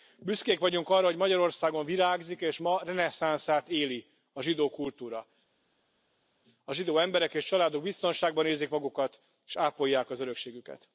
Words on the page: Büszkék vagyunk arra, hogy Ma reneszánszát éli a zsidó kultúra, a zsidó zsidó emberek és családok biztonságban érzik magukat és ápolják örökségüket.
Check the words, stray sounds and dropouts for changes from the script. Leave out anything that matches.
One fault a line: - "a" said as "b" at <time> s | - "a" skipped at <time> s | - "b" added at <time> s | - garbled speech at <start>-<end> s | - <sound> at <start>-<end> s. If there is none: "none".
- "Magyarországon virágzik és" added at 1.1 s
- "zsidó" skipped at 7.0 s
- "az" added at 10.1 s